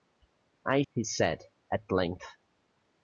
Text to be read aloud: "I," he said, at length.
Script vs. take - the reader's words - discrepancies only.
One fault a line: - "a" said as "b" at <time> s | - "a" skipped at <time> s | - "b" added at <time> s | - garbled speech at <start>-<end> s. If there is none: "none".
none